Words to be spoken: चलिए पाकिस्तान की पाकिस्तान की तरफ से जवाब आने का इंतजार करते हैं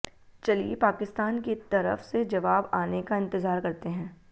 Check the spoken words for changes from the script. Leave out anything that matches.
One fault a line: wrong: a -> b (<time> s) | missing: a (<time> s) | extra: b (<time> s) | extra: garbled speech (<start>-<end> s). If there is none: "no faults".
missing: पाकिस्तान की (1.6 s)